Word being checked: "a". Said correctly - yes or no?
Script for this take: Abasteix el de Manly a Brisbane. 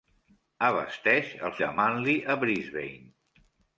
yes